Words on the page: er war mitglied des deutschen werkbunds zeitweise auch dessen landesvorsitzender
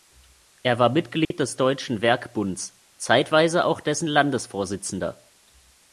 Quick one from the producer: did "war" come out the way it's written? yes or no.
yes